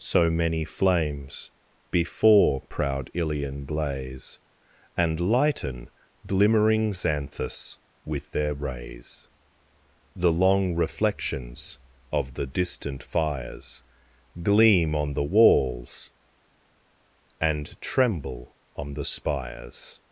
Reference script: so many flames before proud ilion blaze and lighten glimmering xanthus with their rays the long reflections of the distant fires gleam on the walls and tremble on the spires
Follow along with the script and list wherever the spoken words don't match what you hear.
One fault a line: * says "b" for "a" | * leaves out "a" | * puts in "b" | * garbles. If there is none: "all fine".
all fine